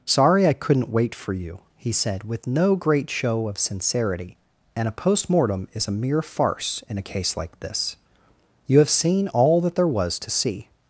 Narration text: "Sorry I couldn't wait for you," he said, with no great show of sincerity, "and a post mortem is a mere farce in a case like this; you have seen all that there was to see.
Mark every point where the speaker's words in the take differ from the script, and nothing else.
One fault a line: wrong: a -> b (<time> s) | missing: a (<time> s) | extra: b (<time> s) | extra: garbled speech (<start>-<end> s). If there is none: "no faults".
no faults